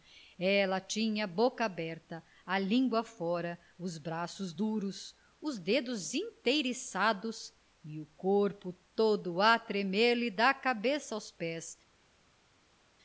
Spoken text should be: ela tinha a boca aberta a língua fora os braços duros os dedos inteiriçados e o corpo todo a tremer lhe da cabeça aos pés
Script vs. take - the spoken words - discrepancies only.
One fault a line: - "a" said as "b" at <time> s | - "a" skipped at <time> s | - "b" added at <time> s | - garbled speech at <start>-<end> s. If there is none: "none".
none